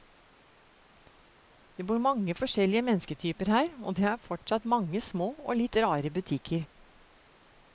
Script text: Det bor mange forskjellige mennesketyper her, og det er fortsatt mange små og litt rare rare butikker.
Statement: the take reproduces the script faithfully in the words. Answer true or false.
false